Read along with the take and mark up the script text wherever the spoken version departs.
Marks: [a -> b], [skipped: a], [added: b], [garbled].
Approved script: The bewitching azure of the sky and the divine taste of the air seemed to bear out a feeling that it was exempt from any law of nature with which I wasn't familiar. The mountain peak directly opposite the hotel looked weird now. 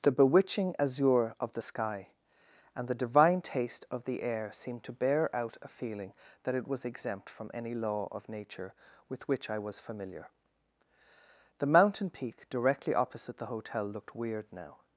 The bewitching azure of the sky and the divine taste of the air seemed to bear out a feeling that it was exempt from any law of nature with which I [wasn't -> was] familiar. The mountain peak directly opposite the hotel looked weird now.